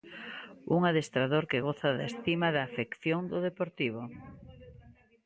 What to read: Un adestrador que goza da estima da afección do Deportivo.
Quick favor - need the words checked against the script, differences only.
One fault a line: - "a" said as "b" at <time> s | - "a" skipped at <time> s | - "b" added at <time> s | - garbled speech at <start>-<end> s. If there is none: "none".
none